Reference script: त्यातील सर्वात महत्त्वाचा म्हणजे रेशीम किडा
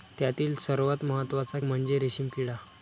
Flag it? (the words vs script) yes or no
no